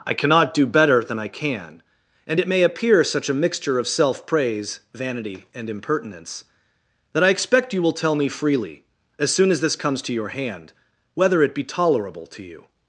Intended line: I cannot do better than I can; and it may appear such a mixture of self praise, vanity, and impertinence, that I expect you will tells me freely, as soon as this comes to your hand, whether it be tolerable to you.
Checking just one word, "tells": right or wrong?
wrong